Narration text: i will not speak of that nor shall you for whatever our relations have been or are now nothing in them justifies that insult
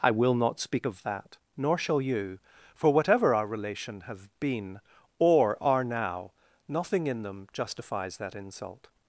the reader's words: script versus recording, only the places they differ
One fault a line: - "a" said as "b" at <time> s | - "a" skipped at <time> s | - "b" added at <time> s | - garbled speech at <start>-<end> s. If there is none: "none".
- "relations" said as "relation" at 3.5 s